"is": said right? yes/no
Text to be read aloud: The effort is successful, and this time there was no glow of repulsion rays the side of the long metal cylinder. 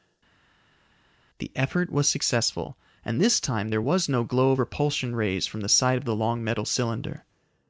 no